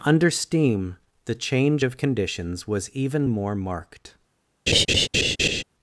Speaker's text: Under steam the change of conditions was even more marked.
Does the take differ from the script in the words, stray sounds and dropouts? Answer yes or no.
yes